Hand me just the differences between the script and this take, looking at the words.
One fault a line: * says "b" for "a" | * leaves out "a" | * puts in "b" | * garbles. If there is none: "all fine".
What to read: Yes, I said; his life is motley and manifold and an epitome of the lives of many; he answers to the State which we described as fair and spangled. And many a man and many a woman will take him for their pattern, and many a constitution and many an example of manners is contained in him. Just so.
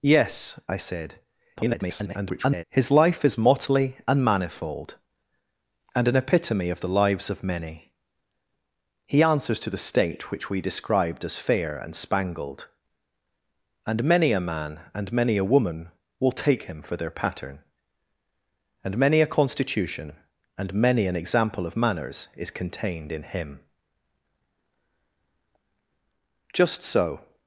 * garbles